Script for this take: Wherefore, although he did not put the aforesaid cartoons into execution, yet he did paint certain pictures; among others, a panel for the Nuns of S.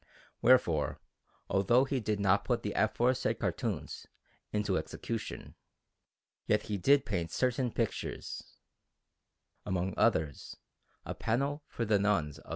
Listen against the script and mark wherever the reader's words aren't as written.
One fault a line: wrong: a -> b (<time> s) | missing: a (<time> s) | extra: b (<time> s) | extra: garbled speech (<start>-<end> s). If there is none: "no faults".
no faults